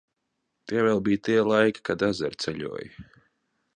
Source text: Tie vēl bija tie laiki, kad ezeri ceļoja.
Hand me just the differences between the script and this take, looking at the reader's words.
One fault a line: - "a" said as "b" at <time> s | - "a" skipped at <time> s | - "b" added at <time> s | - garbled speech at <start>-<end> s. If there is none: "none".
none